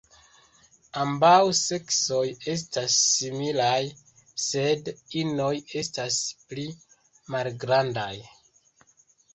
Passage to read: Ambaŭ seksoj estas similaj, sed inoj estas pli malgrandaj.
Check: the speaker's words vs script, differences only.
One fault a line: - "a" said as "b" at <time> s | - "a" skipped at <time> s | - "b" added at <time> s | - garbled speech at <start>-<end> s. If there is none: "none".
none